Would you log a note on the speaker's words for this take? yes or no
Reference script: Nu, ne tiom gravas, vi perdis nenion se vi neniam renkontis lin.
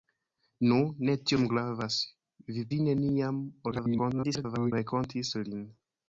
yes